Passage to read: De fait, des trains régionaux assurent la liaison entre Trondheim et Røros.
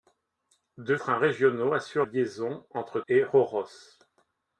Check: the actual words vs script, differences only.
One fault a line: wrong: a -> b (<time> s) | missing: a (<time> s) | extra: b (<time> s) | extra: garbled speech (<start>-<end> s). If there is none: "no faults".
missing: fait des (0.9 s)
missing: la (2.1 s)
missing: Trondheim (3.0 s)